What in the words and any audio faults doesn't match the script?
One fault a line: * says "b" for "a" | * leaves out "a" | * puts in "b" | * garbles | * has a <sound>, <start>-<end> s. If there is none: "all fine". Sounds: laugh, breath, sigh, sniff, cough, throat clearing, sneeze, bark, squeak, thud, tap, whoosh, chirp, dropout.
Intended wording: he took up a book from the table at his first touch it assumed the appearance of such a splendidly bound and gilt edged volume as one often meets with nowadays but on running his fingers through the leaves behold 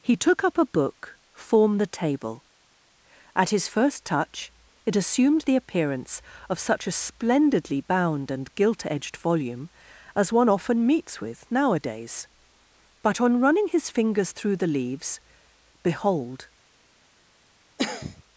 * says "form" for "from"
* has a cough, 17.8-18.2 s